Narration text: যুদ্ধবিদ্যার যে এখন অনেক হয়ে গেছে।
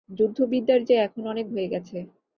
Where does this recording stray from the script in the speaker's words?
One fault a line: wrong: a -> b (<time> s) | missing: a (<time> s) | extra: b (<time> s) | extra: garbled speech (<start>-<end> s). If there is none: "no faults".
no faults